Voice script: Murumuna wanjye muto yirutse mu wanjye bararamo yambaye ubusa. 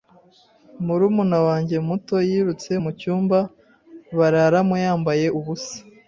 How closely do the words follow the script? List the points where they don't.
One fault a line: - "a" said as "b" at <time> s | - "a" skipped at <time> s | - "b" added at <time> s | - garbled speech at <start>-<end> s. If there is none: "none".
- "wanjye" said as "cyumba" at 3.0 s